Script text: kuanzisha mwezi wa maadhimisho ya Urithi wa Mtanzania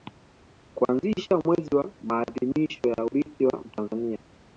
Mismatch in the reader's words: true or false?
false